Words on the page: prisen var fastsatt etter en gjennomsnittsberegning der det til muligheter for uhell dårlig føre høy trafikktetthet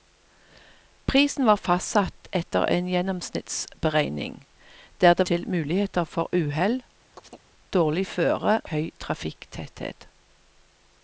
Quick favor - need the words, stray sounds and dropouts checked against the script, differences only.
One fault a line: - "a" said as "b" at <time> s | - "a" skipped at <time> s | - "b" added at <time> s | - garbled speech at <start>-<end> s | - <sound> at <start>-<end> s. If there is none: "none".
- chirp at 7.1-7.5 s